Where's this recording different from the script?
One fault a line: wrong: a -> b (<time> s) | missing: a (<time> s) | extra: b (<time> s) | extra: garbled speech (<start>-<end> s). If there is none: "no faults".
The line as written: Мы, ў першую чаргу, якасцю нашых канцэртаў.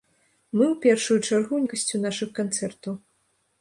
no faults